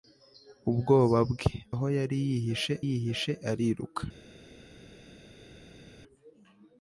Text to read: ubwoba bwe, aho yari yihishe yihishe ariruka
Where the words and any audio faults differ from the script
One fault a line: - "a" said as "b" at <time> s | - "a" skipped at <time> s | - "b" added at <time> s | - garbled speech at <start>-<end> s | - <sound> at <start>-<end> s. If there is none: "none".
none